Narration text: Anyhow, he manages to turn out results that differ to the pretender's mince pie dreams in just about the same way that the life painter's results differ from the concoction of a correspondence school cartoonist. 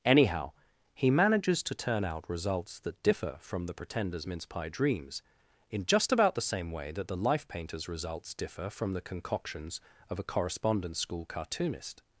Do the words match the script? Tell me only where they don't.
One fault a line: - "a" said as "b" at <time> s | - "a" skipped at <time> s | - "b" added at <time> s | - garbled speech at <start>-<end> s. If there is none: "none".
- "to" said as "from" at 3.4 s
- "concoction" said as "concoctions" at 9.0 s